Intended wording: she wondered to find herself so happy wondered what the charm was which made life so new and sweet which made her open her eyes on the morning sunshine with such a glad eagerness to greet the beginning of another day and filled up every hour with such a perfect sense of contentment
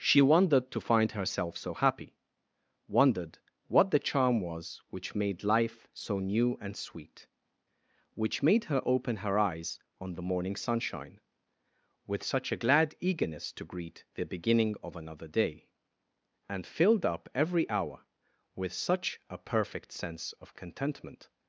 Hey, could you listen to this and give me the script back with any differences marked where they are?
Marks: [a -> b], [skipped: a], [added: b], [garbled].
she wondered to find herself so happy wondered what the charm was which made life so new and sweet which made her open her eyes on the morning sunshine with such a glad eagerness to greet the beginning of another day and filled up every hour with such a perfect sense of contentment